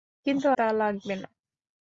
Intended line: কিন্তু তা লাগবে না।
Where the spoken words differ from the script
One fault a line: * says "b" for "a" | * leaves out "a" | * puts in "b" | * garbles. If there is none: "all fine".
all fine